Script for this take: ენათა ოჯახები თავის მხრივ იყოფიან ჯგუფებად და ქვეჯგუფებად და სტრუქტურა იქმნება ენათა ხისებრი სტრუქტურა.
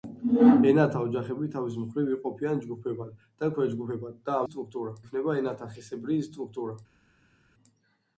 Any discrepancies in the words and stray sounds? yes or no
no